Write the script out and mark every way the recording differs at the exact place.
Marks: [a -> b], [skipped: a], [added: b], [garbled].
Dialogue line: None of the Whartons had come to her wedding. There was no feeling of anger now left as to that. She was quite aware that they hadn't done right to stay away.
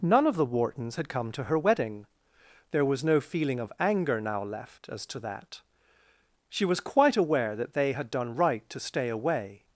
None of the Whartons had come to her wedding. There was no feeling of anger now left as to that. She was quite aware that they [hadn't -> had] done right to stay away.